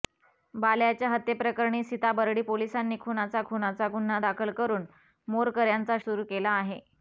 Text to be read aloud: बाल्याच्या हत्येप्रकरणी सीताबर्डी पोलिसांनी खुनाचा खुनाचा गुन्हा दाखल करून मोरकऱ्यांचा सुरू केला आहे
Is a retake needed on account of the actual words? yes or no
no